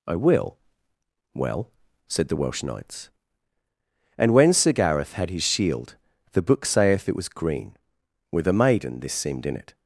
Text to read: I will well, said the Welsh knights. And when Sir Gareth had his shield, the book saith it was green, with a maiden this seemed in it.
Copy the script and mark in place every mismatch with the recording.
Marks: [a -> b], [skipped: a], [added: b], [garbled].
I will well, said the Welsh knights. And when Sir Gareth had his shield, the book saith it was green, with a maiden this seemed in it.